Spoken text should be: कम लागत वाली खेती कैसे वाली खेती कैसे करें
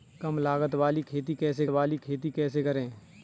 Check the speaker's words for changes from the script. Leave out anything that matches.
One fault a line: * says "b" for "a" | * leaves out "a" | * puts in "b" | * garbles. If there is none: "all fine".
all fine